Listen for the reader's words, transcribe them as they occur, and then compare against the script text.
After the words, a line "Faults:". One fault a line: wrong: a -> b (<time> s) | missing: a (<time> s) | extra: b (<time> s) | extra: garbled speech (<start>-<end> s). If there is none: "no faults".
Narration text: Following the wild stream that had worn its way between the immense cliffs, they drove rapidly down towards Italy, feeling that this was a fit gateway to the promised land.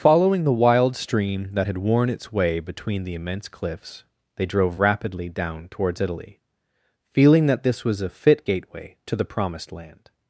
Following the wild stream that had worn its way between the immense cliffs, they drove rapidly down towards Italy, feeling that this was a fit gateway to the promised land.
Faults:
no faults